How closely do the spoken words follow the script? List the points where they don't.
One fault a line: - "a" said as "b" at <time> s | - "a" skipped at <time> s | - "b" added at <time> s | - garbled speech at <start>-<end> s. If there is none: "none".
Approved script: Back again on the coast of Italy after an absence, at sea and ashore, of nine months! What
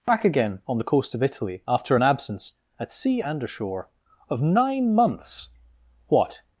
none